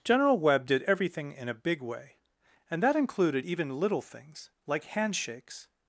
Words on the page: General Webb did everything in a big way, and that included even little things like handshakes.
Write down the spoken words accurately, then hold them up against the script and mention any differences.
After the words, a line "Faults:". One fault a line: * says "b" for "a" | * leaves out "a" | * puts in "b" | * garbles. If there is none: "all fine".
General Webb did everything in a big way, and that included even little things like handshakes.
Faults:
all fine